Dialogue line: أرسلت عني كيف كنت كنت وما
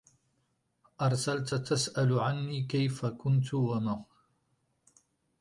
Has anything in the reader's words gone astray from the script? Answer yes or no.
yes